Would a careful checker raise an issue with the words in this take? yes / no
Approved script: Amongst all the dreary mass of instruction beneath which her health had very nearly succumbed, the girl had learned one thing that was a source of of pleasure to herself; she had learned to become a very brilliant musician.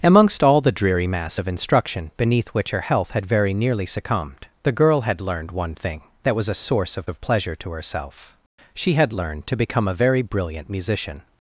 no